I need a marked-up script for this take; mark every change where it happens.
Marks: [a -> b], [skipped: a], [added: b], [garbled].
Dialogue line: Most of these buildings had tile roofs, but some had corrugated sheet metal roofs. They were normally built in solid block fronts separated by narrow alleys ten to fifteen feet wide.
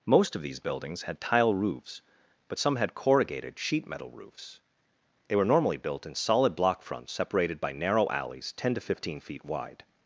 Most of these buildings had tile roofs, but some had corrugated sheet metal roofs. They were normally built in solid block fronts separated by narrow alleys ten to fifteen feet wide.